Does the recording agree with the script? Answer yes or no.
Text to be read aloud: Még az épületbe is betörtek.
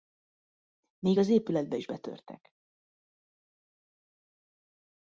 yes